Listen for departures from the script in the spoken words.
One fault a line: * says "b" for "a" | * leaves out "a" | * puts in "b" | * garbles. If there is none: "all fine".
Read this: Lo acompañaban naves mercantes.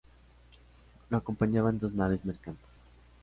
* puts in "dos"